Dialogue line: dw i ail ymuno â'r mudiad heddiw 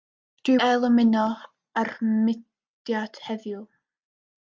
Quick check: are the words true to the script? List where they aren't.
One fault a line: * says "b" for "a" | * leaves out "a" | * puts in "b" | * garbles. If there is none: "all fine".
all fine